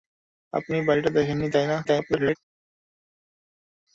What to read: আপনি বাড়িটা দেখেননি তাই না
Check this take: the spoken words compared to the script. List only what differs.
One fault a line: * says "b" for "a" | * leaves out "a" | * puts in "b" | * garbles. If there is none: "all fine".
* garbles